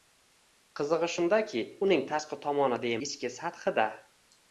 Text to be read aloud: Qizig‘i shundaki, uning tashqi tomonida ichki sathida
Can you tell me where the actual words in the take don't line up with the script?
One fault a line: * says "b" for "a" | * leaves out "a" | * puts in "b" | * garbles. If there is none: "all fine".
all fine